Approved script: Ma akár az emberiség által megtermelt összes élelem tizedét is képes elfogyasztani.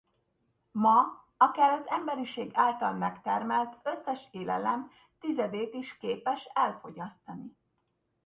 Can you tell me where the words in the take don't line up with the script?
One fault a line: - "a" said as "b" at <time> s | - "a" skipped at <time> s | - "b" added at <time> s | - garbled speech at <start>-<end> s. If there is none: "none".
none